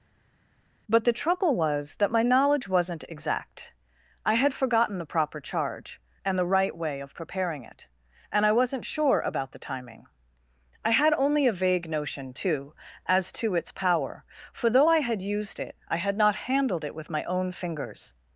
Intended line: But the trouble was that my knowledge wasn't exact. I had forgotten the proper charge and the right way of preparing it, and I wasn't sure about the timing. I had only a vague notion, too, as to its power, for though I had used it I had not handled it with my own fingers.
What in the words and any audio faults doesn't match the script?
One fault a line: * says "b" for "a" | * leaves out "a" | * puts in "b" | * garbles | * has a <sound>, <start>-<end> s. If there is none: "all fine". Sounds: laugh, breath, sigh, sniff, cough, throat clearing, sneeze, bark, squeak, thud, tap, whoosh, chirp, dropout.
all fine